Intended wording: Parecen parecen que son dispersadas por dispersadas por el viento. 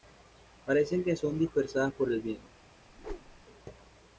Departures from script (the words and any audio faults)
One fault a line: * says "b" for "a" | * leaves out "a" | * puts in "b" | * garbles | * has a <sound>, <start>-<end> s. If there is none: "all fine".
* leaves out "parecen"
* leaves out "dispersadas por"
* has a whoosh, 2.9-3.5 s